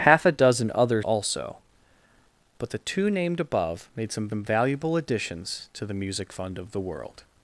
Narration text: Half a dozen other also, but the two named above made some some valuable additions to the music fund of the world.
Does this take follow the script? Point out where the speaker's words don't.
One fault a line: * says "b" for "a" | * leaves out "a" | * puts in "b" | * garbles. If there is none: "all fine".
all fine